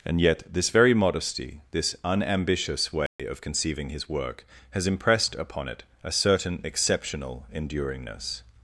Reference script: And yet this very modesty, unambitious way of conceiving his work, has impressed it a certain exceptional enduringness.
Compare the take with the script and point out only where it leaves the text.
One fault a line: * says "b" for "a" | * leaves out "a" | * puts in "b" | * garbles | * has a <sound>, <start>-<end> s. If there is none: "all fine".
* puts in "this"
* has a dropout, 3.1-3.2 s
* puts in "upon"